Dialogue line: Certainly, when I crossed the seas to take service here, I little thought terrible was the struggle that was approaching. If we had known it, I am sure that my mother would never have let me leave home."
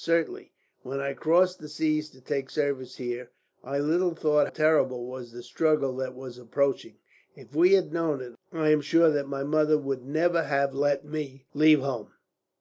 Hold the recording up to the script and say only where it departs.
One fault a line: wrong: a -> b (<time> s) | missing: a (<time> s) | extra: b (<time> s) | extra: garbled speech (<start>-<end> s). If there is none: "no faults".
no faults